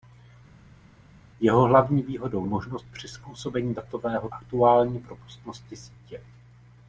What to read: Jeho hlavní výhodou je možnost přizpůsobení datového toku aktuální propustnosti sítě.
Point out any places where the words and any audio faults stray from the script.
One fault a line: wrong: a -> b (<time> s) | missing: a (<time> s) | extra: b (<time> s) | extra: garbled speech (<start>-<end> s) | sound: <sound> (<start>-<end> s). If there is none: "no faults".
missing: je (2.5 s)
missing: toku (4.3 s)